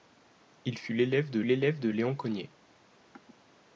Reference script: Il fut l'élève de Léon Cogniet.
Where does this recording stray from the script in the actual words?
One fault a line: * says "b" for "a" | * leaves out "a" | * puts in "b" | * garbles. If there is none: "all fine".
* puts in "l'élève de"